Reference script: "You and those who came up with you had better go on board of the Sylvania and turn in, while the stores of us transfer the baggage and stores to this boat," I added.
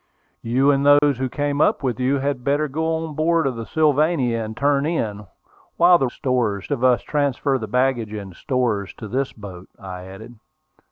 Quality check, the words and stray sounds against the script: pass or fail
fail